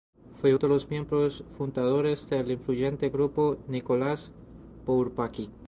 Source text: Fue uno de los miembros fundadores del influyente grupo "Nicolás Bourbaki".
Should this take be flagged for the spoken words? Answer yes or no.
yes